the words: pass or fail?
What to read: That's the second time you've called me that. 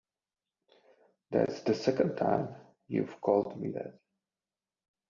pass